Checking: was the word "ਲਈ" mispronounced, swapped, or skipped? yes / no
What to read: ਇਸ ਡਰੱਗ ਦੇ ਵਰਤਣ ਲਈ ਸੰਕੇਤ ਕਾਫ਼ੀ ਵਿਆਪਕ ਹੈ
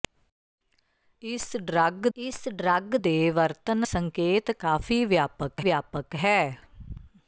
yes